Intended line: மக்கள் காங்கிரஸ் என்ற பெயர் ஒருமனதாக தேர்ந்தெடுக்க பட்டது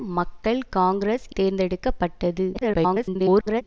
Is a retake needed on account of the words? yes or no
yes